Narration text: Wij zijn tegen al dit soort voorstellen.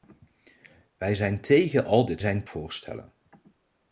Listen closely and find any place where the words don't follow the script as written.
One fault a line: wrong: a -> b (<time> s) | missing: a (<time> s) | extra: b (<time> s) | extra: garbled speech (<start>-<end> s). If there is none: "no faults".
wrong: soort -> zijn (2.2 s)